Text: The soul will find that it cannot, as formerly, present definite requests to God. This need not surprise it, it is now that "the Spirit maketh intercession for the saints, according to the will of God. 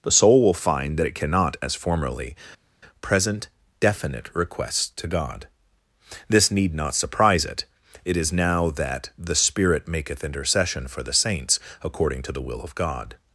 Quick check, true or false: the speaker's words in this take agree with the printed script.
true